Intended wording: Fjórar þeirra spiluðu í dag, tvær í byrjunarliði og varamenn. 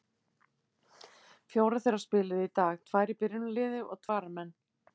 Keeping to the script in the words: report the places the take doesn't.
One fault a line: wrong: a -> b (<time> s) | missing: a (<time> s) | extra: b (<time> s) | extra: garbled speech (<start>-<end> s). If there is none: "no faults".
no faults